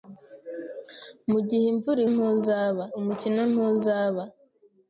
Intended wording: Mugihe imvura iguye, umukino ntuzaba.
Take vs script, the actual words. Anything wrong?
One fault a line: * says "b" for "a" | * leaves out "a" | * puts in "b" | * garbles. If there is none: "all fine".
* says "ntuzaba" for "iguye"